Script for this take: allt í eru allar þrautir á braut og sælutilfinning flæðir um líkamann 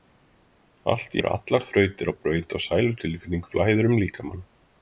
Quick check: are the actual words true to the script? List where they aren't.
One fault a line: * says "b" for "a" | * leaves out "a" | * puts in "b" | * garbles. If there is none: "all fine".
all fine